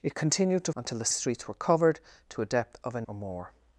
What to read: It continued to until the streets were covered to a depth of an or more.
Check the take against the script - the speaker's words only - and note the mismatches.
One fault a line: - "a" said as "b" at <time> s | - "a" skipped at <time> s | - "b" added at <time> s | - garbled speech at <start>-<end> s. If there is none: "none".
none